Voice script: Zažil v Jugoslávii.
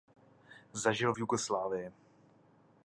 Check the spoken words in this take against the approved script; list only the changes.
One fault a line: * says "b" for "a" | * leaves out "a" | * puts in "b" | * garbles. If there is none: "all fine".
all fine